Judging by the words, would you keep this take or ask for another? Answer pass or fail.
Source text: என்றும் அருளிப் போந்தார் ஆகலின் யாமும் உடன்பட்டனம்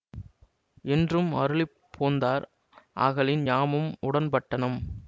pass